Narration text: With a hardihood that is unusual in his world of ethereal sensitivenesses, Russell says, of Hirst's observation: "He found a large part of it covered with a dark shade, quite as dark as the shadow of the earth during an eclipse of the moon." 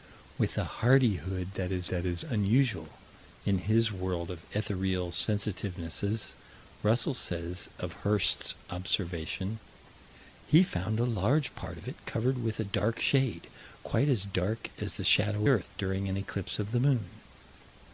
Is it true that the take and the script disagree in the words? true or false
true